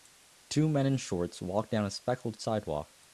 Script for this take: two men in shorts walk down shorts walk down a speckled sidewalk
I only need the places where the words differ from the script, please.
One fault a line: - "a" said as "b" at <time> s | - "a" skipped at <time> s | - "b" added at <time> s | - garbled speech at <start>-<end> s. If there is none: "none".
- "shorts walk down" skipped at 1.9 s